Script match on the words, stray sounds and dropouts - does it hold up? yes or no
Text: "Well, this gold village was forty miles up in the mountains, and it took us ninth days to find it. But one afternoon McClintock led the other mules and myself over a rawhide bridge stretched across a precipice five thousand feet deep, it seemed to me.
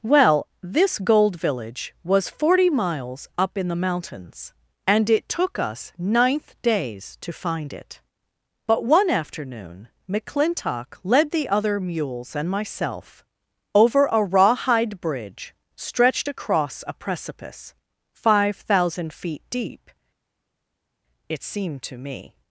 yes